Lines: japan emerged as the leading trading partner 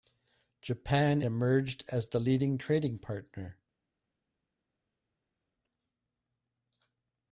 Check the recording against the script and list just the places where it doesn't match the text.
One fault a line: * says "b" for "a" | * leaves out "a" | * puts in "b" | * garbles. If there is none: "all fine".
all fine